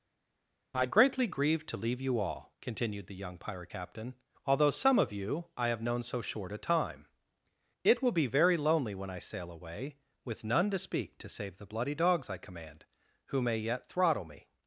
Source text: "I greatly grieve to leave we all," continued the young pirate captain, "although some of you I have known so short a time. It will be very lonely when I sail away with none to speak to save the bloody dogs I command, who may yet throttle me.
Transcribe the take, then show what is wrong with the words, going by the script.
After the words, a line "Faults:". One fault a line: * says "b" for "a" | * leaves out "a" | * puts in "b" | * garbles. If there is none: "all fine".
"I greatly grieve to leave you all," continued the young pirate captain, "although some of you I have known so short a time. It will be very lonely when I sail away with none to speak to save the bloody dogs I command, who may yet throttle me.
Faults:
* says "you" for "we"